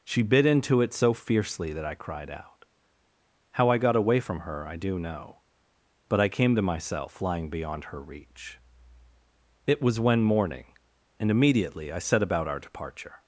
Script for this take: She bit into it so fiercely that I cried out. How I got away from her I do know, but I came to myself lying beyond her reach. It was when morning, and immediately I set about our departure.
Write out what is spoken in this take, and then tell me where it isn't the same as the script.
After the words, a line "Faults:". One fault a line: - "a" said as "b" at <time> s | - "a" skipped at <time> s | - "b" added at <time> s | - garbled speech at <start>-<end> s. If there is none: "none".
She bit into it so fiercely that I cried out. How I got away from her I do know, but I came to myself lying beyond her reach. It was when morning, and immediately I set about our departure.
Faults:
none